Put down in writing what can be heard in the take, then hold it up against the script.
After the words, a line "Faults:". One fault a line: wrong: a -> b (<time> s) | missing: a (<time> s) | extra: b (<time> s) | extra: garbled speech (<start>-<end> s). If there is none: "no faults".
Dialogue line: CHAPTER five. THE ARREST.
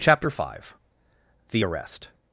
CHAPTER five. THE ARREST.
Faults:
no faults